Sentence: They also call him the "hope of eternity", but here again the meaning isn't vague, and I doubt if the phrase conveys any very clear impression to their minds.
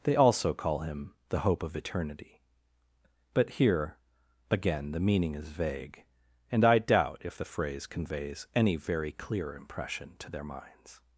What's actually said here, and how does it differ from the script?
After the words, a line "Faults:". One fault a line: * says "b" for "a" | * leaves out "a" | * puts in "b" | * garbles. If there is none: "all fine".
They also call him the "hope of eternity", but here again the meaning is vague, and I doubt if the phrase conveys any very clear impression to their minds.
Faults:
* says "is" for "isn't"